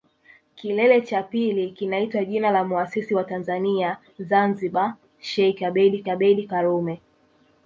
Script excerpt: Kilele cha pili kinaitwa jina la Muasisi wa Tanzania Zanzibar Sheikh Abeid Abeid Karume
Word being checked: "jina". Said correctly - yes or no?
yes